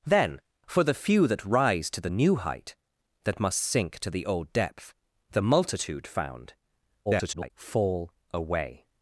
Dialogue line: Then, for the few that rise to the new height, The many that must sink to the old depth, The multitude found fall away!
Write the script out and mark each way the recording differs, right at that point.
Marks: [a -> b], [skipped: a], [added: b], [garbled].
Then, for the few that rise to the new height, [skipped: The many] that must sink to the old depth, The multitude found [garbled] fall away!